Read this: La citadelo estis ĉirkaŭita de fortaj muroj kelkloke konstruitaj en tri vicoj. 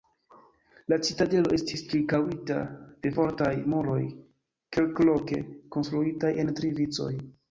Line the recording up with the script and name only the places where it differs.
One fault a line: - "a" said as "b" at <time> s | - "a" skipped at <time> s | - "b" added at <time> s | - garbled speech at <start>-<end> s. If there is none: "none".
none